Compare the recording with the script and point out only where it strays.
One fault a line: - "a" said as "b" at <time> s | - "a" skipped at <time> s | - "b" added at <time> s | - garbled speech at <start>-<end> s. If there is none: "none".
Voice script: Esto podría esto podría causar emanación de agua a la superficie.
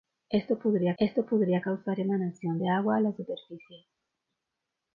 none